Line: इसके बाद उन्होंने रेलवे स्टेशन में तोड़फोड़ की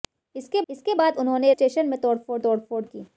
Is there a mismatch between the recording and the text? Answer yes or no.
yes